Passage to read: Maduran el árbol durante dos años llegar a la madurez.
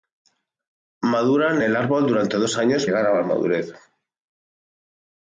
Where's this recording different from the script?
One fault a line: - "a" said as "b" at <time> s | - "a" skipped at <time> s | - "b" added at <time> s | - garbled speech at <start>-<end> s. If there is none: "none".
none